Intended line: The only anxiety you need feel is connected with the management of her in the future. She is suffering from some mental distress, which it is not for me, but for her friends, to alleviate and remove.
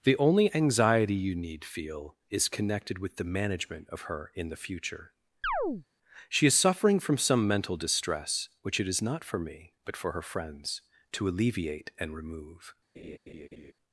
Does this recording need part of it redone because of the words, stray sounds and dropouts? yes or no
yes